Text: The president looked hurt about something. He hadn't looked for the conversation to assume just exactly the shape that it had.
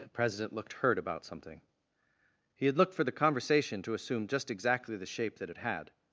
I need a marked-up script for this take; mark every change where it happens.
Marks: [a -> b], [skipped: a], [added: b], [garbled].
The president looked hurt about something. He [hadn't -> had] looked for the conversation to assume just exactly the shape that it had.